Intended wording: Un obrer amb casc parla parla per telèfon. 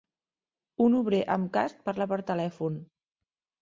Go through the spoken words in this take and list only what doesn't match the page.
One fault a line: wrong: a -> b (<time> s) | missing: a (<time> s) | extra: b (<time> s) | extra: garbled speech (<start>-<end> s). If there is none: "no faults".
missing: parla (2.1 s)